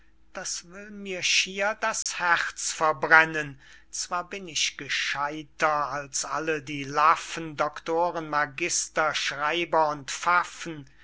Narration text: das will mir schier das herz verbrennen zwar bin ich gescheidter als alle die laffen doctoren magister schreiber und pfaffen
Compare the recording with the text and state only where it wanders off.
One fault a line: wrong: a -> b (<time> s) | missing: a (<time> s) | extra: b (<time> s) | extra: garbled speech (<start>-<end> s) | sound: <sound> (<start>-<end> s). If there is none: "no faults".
sound: dropout (2.0-2.1 s)